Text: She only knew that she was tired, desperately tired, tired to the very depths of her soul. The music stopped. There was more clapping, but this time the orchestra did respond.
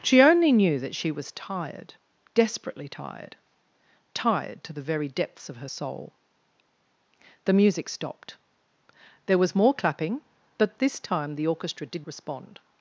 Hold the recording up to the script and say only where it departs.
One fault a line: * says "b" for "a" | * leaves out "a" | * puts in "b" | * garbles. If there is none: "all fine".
all fine